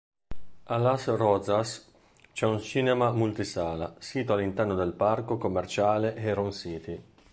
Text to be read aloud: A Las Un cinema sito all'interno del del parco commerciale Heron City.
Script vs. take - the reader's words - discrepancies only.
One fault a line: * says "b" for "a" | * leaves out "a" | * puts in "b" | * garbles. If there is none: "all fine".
* puts in "Rozas c'è"
* puts in "multisala"
* leaves out "del"